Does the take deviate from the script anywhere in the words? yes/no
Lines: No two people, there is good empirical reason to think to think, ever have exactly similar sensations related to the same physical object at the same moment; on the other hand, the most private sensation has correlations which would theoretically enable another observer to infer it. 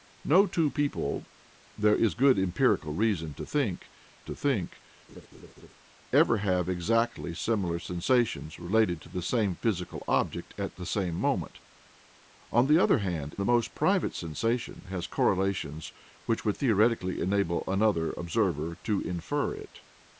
no